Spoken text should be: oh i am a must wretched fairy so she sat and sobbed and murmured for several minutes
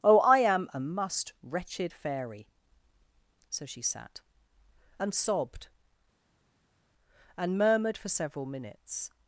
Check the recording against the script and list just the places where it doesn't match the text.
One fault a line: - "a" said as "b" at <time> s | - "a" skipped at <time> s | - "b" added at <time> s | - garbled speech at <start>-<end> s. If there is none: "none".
none